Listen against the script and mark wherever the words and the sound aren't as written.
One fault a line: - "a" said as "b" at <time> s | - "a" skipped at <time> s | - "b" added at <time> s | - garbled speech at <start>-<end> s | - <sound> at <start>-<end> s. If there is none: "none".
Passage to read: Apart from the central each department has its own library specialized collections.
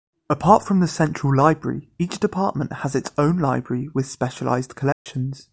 - "library" added at 1.4 s
- "with" added at 3.9 s
- dropout at 4.9-5.1 s